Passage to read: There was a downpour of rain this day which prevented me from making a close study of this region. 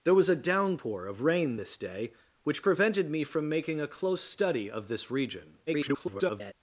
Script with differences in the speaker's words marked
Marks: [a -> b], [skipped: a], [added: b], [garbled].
There was a downpour of rain this day which prevented me from making a close study of this region. [garbled]